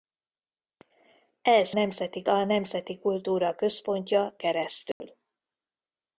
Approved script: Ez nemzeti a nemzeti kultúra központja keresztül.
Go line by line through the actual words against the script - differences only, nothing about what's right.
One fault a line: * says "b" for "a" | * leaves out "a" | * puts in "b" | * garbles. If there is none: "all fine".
all fine